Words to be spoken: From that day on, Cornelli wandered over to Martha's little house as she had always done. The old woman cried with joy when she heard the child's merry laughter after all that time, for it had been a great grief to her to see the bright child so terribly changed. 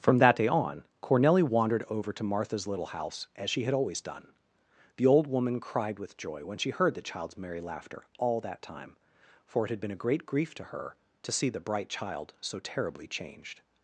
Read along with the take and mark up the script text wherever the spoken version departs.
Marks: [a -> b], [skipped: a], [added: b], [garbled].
From that day on, Cornelli wandered over to Martha's little house as she had always done. The old woman cried with joy when she heard the child's merry laughter [skipped: after] all that time, for it had been a great grief to her to see the bright child so terribly changed.